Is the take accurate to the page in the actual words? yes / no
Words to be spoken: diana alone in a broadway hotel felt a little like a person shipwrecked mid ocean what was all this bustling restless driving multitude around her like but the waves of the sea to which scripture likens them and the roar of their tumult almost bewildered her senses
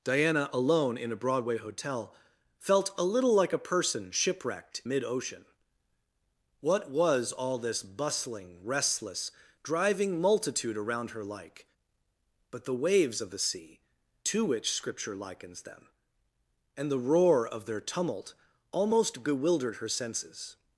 yes